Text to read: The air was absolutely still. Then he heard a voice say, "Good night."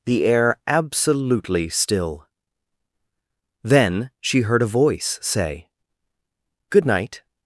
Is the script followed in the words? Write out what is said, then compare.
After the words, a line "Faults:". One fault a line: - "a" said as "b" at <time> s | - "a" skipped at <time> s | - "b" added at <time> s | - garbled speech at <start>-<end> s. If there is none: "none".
The air absolutely still. Then she heard a voice say, "Good night."
Faults:
- "was" skipped at 0.6 s
- "he" said as "she" at 4.2 s